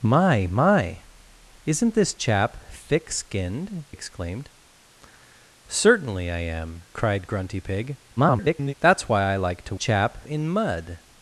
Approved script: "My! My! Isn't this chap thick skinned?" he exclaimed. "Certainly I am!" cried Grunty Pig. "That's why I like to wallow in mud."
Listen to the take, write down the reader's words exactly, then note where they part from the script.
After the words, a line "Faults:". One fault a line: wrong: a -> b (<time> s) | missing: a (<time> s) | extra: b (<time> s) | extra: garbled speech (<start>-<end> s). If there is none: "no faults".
"My! My! Isn't this chap thick skinned?" exclaimed. "Certainly I am!" cried Grunty Pig. [garbled] "That's why I like to chap in mud."
Faults:
missing: he (3.8 s)
extra: garbled speech (8.2-8.7 s)
wrong: wallow -> chap (9.7 s)